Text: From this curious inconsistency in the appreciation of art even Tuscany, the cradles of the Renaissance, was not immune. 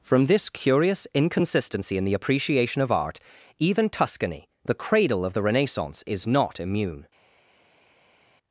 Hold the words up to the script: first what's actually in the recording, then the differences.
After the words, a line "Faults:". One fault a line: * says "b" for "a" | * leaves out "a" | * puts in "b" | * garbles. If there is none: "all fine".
From this curious inconsistency in the appreciation of art even Tuscany, the cradle of the Renaissance, is not immune.
Faults:
* says "cradle" for "cradles"
* says "is" for "was"